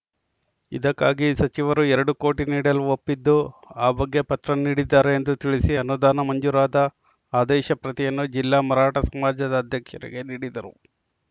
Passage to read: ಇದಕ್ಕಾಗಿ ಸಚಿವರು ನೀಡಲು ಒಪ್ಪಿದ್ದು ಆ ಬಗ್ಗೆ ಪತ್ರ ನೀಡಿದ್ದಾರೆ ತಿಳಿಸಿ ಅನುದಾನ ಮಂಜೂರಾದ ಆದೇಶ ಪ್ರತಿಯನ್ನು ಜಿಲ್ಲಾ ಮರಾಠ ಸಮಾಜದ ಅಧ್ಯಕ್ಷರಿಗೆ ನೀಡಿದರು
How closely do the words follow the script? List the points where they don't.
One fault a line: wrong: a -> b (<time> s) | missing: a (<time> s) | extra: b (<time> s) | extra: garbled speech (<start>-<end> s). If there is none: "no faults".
extra: ಎರಡು ಕೋಟಿ (1.9 s)
extra: ಎಂದು (5.1 s)